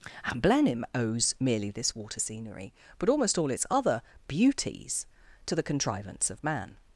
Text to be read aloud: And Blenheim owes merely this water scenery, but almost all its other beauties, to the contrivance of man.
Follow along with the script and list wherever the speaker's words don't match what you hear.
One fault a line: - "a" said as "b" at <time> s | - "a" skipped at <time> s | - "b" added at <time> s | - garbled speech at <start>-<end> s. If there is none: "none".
none